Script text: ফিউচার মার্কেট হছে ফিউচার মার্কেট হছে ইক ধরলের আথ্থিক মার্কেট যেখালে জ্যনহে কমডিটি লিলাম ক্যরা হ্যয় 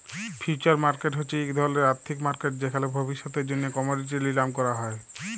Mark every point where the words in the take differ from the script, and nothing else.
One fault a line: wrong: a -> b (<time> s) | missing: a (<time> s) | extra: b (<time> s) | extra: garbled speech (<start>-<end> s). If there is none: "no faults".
missing: ফিউচার মার্কেট হছে (1.4 s)
extra: ভবিষ্যতের (3.0 s)